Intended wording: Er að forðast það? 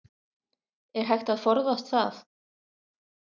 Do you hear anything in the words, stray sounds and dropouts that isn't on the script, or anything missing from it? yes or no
yes